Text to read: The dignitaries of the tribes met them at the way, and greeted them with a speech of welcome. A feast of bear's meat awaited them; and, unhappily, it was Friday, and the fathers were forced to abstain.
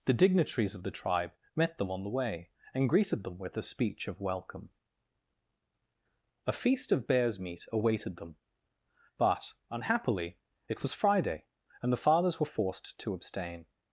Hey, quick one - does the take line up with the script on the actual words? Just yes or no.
no